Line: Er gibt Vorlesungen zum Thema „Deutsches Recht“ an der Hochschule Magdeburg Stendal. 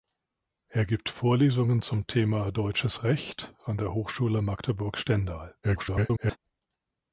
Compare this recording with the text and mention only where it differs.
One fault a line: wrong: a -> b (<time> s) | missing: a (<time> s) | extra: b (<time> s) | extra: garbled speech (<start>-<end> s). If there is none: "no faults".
extra: garbled speech (5.6-6.4 s)